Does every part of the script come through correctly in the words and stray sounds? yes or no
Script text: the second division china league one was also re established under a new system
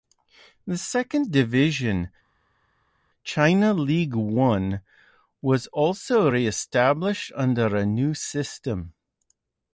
yes